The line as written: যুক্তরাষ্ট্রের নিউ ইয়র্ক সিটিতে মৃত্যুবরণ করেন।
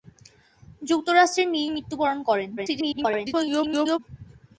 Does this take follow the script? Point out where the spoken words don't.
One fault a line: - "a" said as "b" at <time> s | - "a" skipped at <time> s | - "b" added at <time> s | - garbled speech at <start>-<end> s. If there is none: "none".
- "ইয়র্ক সিটিতে" skipped at 1.7 s
- garbled speech at 2.6-4.0 s